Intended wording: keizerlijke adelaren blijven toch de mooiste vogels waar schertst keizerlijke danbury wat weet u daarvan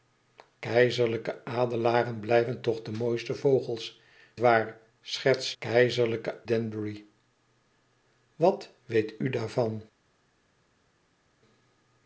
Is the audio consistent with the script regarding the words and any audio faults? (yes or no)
yes